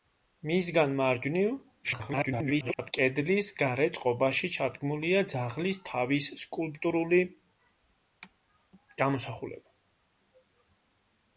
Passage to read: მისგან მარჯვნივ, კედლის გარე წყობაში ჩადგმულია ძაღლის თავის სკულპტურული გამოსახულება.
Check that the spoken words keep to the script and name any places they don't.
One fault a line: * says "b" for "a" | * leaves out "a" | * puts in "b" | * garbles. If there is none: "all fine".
* garbles